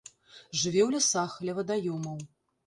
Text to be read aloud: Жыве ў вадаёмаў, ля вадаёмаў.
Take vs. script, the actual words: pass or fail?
fail